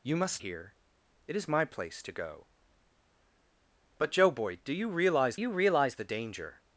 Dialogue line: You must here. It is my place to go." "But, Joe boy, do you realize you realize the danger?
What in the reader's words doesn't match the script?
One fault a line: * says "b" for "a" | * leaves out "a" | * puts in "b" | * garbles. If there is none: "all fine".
all fine